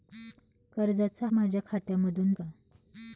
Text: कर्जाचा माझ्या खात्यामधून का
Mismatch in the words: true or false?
false